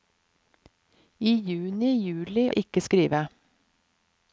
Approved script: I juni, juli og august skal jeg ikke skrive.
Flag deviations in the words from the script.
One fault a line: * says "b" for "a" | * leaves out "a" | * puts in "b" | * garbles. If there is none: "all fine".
* leaves out "og august skal"